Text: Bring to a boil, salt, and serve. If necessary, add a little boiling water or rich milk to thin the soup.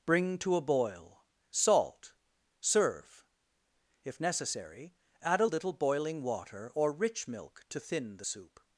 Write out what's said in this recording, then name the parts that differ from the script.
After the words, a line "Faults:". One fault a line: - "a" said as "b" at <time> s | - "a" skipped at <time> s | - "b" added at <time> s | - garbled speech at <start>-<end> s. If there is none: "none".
Bring to a boil, salt, serve. If necessary, add a little boiling water or rich milk to thin the soup.
Faults:
- "and" skipped at 2.1 s